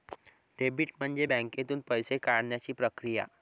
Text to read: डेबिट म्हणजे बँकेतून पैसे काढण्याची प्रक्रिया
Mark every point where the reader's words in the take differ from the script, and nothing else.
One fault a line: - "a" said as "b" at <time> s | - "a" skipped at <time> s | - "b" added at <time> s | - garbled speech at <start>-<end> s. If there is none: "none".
none